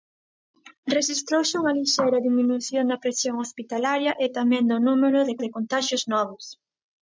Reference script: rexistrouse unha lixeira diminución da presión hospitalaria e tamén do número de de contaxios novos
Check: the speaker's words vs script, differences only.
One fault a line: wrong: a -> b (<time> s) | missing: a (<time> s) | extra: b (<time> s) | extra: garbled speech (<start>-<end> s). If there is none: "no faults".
no faults